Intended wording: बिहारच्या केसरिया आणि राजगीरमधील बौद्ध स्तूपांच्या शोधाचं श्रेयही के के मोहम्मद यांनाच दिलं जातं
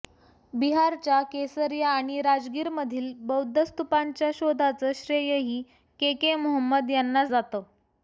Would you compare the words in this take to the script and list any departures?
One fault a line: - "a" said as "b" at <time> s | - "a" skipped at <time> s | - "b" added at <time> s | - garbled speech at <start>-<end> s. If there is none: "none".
- "दिलं" skipped at 7.3 s